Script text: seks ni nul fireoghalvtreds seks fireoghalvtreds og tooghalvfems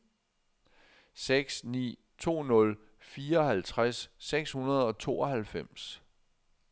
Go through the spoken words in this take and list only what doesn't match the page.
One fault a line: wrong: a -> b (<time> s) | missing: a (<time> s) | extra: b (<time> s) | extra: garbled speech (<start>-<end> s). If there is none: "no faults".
extra: to (2.2 s)
wrong: fireoghalvtreds -> hundrede (4.5 s)